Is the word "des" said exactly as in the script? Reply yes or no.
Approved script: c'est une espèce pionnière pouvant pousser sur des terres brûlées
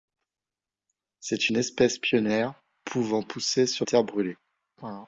no